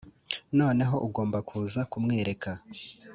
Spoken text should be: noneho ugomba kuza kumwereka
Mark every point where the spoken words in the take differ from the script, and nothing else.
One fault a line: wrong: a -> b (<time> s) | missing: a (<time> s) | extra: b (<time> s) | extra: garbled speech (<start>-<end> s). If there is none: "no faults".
no faults